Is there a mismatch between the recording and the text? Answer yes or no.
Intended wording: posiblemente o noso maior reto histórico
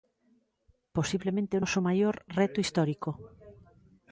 no